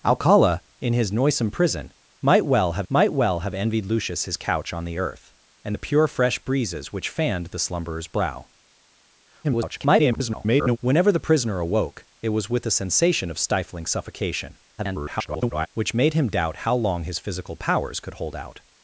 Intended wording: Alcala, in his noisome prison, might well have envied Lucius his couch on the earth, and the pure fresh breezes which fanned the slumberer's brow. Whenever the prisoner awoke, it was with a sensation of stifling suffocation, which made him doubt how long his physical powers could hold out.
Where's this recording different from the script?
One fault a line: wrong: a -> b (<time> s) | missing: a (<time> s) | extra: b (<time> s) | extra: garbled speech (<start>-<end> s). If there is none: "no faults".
extra: might well have (2.9 s)
extra: garbled speech (9.4-10.8 s)
extra: garbled speech (14.8-15.7 s)